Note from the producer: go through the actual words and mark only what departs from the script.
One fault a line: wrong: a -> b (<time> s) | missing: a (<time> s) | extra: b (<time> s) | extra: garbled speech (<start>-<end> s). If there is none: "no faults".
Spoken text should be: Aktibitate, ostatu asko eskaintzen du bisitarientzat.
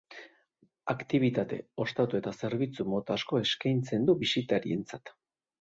extra: eta zerbitzu mota (2.2 s)